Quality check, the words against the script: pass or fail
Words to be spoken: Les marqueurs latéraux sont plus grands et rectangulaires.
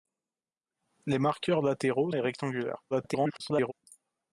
fail